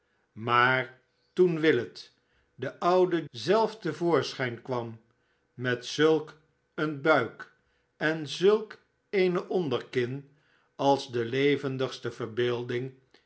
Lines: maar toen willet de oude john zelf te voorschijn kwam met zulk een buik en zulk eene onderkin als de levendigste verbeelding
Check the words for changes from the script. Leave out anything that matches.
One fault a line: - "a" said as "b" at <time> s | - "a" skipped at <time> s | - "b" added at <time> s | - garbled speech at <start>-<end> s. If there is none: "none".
- "john" skipped at 3.3 s